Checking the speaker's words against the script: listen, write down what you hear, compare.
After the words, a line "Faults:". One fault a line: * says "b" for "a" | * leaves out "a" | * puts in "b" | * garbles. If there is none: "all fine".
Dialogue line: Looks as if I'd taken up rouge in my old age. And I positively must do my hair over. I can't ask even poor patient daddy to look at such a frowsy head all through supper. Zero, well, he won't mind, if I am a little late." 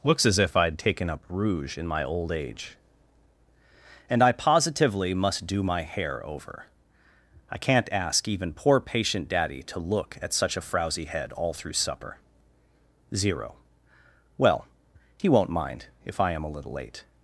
Looks as if I'd taken up rouge in my old age. And I positively must do my hair over. I can't ask even poor patient daddy to look at such a frowsy head all through supper. Zero, well, he won't mind, if I am a little late."
Faults:
all fine